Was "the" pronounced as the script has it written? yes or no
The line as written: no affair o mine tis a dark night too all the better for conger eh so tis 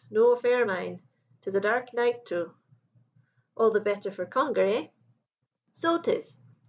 yes